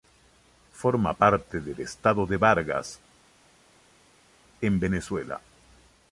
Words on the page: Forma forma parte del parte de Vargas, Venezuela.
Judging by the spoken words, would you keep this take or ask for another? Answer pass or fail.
fail